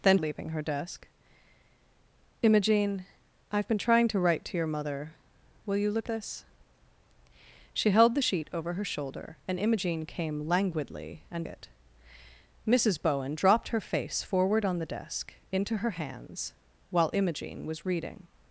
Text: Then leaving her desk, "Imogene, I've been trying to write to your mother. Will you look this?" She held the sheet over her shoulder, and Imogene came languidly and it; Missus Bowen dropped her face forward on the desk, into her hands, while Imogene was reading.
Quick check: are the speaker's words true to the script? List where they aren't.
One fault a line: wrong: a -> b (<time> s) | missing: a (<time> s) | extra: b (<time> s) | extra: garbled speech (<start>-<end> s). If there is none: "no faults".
no faults